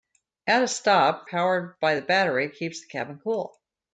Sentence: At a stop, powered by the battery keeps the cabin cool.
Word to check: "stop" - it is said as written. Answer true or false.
true